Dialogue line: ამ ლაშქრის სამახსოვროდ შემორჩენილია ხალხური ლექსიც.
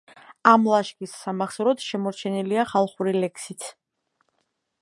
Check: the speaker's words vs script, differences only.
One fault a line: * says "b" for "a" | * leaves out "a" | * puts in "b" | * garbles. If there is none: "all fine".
all fine